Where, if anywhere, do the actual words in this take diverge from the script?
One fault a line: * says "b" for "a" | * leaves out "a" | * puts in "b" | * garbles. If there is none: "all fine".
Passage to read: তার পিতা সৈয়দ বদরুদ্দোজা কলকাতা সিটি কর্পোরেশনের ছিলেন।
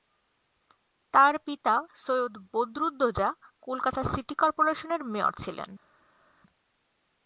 * puts in "মেয়র"